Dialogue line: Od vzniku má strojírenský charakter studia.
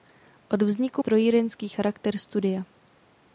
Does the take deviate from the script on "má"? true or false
true